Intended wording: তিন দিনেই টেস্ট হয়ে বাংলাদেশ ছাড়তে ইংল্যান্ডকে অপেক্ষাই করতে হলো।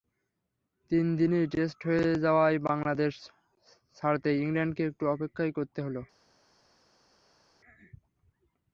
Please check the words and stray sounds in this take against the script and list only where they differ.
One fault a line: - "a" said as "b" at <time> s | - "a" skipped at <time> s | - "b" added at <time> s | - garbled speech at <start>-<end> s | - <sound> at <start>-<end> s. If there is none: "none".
- "যাওয়ায়" added at 2.2 s
- "একটু" added at 4.9 s